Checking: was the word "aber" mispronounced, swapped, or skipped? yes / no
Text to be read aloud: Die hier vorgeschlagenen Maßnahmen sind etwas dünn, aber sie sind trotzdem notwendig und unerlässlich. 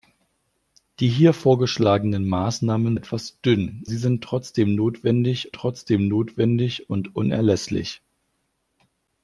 yes